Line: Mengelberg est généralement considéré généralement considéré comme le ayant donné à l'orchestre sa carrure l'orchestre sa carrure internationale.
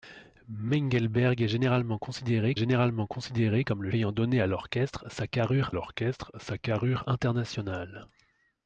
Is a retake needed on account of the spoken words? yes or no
no